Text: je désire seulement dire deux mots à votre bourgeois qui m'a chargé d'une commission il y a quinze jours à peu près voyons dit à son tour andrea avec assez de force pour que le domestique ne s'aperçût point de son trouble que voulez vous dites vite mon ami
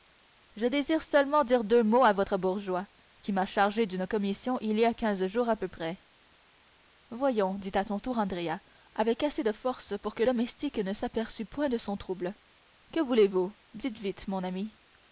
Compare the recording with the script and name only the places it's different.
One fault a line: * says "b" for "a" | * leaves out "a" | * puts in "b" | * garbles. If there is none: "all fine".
* leaves out "le"